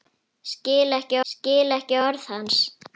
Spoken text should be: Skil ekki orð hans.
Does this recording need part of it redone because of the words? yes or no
yes